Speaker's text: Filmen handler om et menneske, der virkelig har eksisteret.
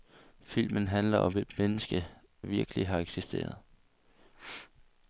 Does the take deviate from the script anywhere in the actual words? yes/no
yes